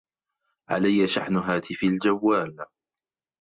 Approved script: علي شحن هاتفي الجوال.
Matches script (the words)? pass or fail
pass